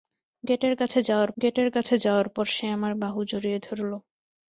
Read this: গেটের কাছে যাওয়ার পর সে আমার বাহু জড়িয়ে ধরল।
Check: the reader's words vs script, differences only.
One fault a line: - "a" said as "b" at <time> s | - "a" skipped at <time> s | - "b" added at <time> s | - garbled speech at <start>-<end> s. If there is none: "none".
- "গেটের কাছে যাওয়ার" added at 1.4 s